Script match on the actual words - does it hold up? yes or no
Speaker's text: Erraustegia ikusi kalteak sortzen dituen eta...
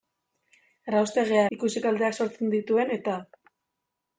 yes